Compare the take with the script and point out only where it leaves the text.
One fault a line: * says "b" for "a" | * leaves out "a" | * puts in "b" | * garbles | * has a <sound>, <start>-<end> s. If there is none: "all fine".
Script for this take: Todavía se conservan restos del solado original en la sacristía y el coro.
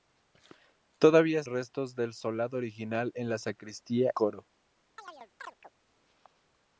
* leaves out "se conservan"
* leaves out "y el"
* has a chirp, 5.0-5.7 s